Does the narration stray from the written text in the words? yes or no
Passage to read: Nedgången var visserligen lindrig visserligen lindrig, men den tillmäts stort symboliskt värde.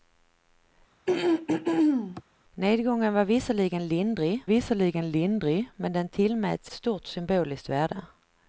no